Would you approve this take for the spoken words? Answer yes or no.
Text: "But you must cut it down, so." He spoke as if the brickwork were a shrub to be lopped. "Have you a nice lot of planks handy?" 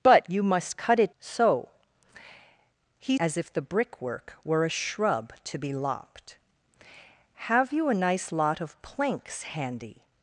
no